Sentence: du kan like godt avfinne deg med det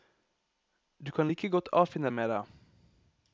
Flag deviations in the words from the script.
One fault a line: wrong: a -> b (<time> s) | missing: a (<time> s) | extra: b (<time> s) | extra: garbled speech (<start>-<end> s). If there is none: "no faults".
missing: deg (2.1 s)